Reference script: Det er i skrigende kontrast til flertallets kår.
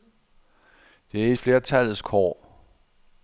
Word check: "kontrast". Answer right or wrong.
wrong